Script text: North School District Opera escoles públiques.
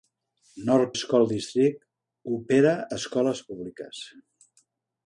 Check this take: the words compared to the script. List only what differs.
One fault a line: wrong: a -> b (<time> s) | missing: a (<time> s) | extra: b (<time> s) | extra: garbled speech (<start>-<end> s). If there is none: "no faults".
no faults